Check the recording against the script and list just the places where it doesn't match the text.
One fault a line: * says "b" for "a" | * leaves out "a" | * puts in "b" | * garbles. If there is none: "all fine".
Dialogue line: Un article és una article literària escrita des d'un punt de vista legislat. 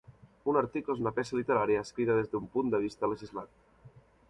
* says "peça" for "article"